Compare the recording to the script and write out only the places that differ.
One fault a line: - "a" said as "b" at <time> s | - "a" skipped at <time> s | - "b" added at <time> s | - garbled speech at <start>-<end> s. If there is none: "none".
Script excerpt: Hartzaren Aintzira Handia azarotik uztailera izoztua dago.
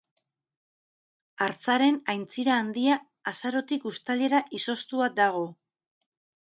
none